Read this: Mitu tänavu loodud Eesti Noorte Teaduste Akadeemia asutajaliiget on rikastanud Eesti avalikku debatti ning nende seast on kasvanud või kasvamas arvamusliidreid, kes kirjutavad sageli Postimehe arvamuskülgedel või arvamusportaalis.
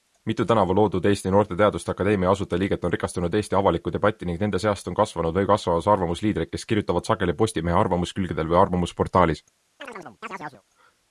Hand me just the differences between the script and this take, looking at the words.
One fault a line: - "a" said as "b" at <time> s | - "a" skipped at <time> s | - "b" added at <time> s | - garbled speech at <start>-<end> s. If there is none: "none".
none